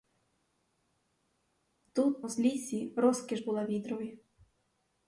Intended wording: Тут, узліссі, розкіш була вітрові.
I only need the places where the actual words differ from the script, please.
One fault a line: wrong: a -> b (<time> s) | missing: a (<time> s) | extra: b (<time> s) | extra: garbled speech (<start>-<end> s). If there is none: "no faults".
no faults